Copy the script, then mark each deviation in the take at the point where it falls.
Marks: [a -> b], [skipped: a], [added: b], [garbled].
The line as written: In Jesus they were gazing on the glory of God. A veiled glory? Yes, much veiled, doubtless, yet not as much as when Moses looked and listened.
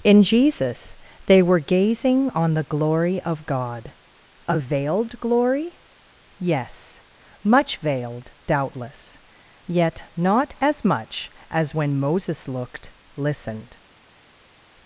In Jesus they were gazing on the glory of God. A veiled glory? Yes, much veiled, doubtless, yet not as much as when Moses looked [skipped: and] listened.